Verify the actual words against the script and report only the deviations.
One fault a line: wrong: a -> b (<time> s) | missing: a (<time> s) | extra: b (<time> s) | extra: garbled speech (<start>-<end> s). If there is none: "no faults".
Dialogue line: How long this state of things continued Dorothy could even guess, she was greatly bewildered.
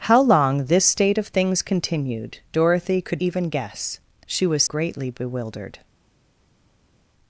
no faults